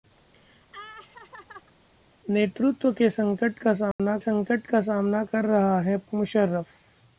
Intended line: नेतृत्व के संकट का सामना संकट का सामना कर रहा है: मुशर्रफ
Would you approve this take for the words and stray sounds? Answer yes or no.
no